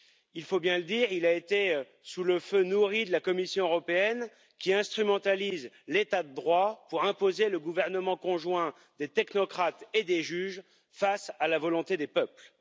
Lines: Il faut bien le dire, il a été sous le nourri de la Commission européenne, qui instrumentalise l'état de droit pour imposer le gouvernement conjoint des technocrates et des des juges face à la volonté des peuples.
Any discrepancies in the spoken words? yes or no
yes